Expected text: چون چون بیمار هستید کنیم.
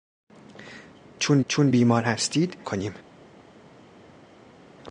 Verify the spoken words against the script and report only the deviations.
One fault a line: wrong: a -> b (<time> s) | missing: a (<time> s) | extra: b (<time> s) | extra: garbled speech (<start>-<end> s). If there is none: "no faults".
no faults